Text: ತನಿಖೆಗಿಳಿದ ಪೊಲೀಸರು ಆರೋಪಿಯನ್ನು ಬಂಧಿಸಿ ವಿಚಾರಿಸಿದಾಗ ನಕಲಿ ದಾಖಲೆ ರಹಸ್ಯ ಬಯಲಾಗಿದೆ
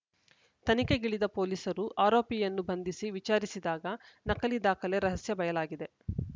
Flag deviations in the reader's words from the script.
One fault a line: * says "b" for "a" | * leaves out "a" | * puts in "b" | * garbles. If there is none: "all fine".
all fine